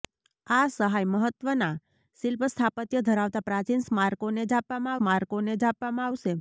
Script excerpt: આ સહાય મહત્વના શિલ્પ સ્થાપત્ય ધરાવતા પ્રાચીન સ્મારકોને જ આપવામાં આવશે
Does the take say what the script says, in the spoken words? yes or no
no